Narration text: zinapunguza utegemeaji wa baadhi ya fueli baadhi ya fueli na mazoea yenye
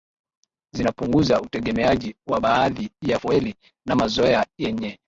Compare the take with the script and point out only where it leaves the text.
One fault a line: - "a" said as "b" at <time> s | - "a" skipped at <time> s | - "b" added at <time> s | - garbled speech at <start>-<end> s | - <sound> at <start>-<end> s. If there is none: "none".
- "baadhi ya fueli" skipped at 3.5 s